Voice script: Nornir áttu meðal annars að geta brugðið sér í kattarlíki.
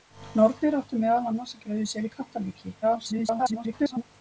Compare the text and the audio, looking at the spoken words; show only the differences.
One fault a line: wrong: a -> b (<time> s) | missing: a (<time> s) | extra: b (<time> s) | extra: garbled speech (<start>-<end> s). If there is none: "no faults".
missing: geta (1.6 s)
extra: garbled speech (2.8-4.0 s)